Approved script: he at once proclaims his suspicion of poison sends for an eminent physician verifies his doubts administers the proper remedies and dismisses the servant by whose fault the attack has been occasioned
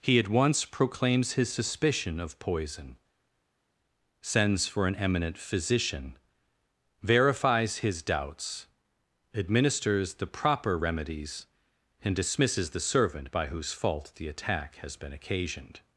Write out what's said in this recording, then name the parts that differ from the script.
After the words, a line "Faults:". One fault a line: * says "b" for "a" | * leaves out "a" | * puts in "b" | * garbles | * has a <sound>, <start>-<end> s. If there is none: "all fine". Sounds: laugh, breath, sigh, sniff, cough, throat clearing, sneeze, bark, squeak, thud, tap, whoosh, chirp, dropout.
he at once proclaims his suspicion of poison sends for an eminent physician verifies his doubts administers the proper remedies and dismisses the servant by whose fault the attack has been occasioned
Faults:
all fine